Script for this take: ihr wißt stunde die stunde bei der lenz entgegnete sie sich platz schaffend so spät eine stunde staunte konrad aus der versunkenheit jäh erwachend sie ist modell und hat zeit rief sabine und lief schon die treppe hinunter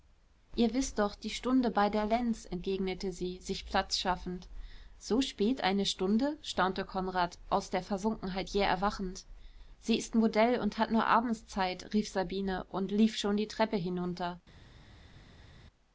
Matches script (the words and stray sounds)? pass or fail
fail